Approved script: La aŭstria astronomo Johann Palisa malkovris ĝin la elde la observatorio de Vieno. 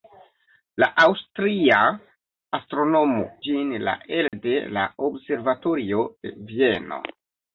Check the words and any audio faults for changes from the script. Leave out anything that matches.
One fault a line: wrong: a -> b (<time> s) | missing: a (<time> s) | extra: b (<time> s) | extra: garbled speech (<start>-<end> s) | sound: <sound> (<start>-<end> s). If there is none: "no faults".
missing: Johann Palisa malkovris (3.2 s)
sound: dropout (4.3-4.3 s)